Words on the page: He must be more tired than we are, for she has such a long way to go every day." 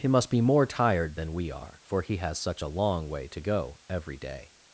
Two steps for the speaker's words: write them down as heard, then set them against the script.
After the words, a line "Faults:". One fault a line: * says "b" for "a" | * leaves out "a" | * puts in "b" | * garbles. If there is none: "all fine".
He must be more tired than we are, for he has such a long way to go every day."
Faults:
* says "he" for "she"